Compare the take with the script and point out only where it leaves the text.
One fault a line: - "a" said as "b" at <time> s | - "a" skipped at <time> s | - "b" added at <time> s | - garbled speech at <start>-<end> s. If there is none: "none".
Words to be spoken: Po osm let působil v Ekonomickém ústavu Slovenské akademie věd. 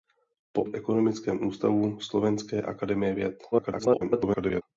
- "osm let působil" skipped at 0.6 s
- garbled speech at 3.5-4.6 s